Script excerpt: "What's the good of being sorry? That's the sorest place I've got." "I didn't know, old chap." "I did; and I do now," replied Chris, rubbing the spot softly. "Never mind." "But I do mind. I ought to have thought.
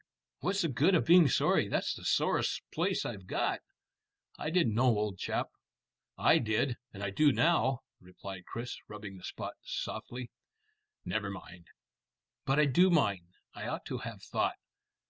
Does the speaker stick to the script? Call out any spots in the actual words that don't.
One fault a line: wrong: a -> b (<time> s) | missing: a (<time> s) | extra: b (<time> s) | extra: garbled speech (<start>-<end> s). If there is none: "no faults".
no faults